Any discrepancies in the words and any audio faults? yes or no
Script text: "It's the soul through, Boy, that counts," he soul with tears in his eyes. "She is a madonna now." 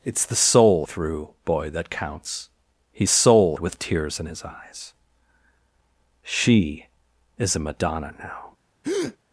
yes